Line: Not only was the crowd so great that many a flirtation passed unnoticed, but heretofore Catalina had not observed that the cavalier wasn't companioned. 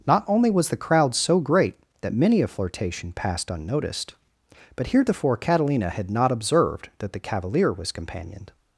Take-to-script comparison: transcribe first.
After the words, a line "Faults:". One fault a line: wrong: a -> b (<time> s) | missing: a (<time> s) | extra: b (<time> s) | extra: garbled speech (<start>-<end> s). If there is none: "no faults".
Not only was the crowd so great that many a flirtation passed unnoticed, but heretofore Catalina had not observed that the cavalier was companioned.
Faults:
wrong: wasn't -> was (7.7 s)